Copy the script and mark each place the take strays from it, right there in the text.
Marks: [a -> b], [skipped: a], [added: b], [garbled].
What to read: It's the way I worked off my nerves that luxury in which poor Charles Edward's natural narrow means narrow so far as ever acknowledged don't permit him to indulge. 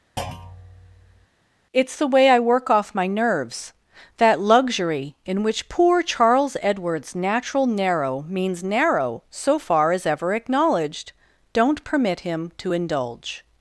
It's the way I [worked -> work] off my nerves that luxury in which poor Charles Edward's natural narrow means narrow so far as ever acknowledged don't permit him to indulge.